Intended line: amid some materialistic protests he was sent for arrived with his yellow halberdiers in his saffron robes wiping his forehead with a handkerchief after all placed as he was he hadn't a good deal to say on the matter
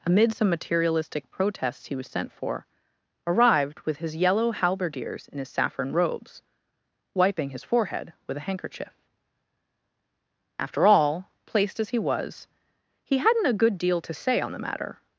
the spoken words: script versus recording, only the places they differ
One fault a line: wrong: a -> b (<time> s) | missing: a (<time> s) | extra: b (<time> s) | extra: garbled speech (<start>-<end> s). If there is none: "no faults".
no faults